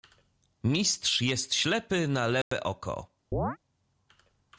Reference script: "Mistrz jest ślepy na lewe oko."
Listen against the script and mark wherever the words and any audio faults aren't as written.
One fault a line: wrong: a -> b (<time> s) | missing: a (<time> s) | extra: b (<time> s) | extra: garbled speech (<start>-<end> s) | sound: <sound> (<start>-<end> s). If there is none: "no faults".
sound: dropout (2.4-2.5 s)
sound: chirp (3.3-3.6 s)